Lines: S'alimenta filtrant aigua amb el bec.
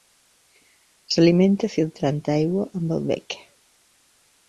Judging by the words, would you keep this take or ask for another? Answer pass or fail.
pass